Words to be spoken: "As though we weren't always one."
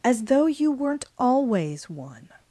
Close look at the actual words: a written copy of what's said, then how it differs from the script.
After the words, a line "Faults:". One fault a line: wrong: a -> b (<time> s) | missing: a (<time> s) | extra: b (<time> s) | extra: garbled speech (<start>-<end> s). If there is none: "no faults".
"As though you weren't always one."
Faults:
wrong: we -> you (0.5 s)